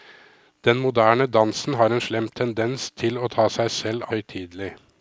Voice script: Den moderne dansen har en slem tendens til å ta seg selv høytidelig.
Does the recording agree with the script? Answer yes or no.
yes